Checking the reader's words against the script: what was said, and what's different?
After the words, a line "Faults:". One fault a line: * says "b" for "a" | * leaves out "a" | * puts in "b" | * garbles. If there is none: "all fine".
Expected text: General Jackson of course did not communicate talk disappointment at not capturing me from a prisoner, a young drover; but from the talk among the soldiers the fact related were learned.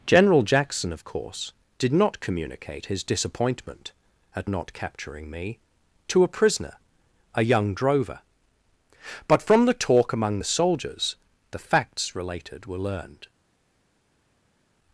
General Jackson of course did not communicate his disappointment at not capturing me to a prisoner, a young drover; but from the talk among the soldiers the facts related were learned.
Faults:
* says "his" for "talk"
* says "to" for "from"
* says "facts" for "fact"